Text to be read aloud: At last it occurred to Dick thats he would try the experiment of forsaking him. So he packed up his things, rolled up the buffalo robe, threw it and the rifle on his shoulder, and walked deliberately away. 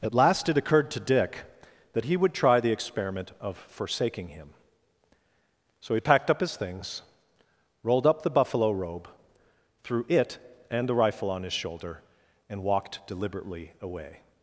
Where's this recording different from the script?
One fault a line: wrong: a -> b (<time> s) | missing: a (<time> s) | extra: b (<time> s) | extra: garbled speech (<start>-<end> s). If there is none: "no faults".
wrong: thats -> that (1.9 s)